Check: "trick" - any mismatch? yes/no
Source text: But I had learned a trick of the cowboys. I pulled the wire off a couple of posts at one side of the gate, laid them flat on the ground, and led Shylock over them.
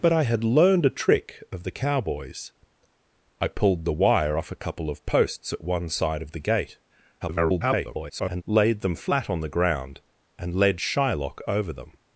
no